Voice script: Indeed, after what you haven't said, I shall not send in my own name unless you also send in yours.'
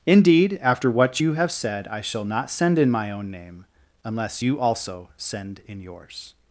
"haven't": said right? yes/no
no